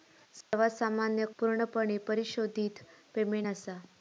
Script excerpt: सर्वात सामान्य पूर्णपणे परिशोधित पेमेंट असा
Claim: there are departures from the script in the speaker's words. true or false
false